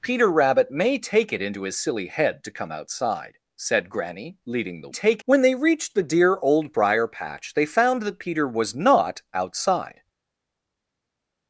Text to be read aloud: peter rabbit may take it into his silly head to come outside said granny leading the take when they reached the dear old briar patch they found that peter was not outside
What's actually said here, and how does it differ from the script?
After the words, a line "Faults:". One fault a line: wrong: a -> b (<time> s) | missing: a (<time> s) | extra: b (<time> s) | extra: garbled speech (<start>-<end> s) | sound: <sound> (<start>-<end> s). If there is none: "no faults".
peter rabbit may take it into his silly head to come outside said granny leading the take when they reached the dear old briar patch they found that peter was not outside
Faults:
no faults